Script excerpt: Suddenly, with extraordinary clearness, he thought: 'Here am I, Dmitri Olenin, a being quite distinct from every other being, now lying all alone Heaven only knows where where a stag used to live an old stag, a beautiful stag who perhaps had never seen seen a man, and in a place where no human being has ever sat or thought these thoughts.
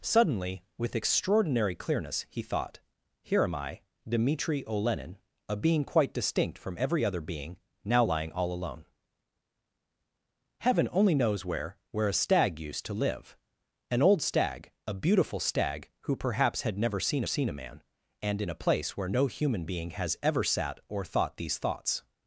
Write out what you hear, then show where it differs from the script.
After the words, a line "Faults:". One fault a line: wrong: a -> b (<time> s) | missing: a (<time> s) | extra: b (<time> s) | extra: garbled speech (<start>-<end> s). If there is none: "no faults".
Suddenly, with extraordinary clearness, he thought: 'Here am I, Dmitri Olenin, a being quite distinct from every other being, now lying all alone Heaven only knows where where a stag used to live an old stag, a beautiful stag who perhaps had never seen seen a man, and in a place where no human being has ever sat or thought these thoughts.
Faults:
no faults